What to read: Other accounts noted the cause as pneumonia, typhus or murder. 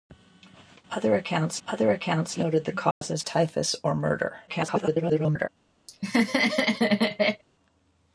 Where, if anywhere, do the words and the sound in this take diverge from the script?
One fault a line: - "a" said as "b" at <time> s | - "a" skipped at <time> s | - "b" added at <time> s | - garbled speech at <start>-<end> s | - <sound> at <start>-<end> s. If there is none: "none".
- "other accounts" added at 1.7 s
- dropout at 2.9-3.0 s
- "pneumonia" skipped at 3.2 s
- garbled speech at 4.5-5.5 s
- laugh at 5.9-7.4 s